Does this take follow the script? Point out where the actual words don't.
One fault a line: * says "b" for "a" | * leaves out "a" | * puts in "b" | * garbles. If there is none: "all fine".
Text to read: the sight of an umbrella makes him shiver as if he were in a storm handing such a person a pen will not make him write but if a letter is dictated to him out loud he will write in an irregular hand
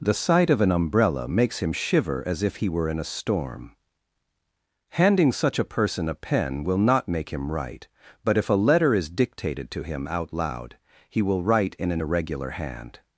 all fine